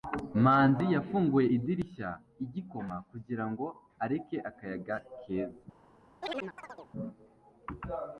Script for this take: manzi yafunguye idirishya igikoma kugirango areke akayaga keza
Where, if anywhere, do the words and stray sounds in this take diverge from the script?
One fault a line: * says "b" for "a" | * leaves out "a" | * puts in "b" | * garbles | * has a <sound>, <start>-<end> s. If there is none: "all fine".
* has a chirp, 6.2-6.9 s